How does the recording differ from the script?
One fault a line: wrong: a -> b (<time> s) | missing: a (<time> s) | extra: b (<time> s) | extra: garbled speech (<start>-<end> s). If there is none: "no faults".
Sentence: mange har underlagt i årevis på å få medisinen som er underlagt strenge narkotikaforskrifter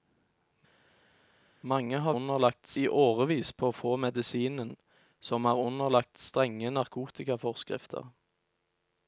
no faults